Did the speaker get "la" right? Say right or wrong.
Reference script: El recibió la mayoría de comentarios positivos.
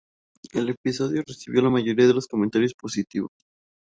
right